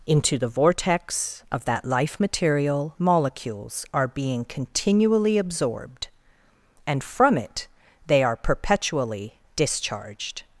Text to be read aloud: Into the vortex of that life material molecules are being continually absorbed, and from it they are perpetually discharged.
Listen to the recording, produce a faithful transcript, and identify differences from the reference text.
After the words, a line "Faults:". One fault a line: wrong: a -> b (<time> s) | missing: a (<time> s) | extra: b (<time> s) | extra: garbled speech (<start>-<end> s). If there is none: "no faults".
Into the vortex of that life material molecules are being continually absorbed, and from it they are perpetually discharged.
Faults:
no faults